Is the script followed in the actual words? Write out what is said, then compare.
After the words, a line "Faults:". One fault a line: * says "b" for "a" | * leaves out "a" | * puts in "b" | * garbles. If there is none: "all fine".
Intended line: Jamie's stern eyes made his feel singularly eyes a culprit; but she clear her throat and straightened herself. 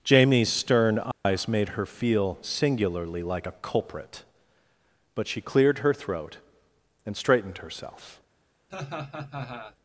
Jamie's stern eyes made her feel singularly like a culprit; but she cleared her throat and straightened herself.
Faults:
* says "her" for "his"
* says "like" for "eyes"
* says "cleared" for "clear"